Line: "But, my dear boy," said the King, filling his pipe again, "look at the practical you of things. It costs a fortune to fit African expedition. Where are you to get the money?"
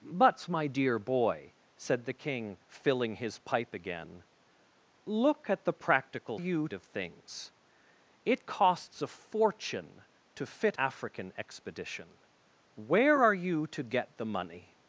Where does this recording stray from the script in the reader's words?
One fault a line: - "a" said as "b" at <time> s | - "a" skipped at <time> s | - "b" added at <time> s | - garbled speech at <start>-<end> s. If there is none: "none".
none